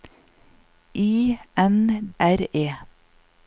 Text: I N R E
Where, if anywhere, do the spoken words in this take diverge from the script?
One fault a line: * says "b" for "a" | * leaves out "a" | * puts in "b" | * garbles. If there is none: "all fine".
all fine